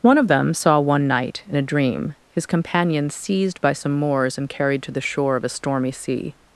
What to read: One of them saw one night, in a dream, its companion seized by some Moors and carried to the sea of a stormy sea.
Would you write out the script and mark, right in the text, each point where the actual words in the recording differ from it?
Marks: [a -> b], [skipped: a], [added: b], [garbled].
One of them saw one night, in a dream, [its -> his] companion seized by some Moors and carried to the [sea -> shore] of a stormy sea.